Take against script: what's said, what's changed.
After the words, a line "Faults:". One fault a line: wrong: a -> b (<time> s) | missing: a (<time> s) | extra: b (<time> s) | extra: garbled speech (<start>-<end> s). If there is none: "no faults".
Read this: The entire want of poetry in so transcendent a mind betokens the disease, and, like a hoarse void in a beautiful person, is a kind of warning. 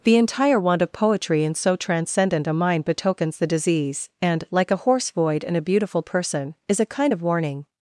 The entire want of poetry in so transcendent a mind betokens the disease, and, like a hoarse void in a beautiful person, is a kind of warning.
Faults:
no faults